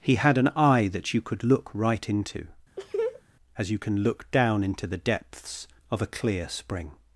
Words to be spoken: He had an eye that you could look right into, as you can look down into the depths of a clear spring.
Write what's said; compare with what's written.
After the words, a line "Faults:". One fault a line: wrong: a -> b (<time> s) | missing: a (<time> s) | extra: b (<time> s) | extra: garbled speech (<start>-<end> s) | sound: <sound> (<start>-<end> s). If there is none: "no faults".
He had an eye that you could look right into, as you can look down into the depths of a clear spring.
Faults:
sound: laugh (2.8-3.2 s)